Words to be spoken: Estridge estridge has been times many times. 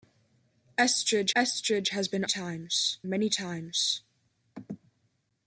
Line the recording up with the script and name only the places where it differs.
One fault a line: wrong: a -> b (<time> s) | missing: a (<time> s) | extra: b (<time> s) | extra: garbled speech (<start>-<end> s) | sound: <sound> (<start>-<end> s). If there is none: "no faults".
no faults